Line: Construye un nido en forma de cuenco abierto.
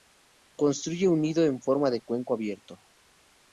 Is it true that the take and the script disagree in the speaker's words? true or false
false